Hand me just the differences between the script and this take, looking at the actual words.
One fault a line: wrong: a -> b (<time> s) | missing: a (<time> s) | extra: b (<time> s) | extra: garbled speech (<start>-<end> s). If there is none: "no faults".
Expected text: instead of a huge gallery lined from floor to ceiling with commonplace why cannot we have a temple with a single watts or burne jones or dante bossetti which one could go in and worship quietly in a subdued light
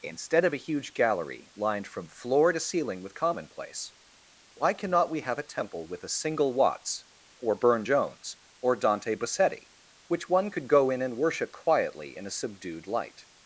no faults